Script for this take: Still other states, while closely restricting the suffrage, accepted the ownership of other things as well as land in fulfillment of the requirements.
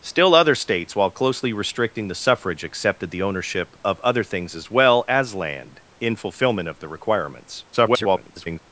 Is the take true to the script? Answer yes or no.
no